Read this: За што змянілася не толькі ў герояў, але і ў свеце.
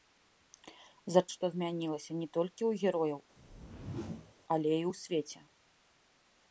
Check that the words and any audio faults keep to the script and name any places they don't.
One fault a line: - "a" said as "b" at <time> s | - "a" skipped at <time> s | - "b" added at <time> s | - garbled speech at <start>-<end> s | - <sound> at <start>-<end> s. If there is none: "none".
- whoosh at 3.4-4.3 s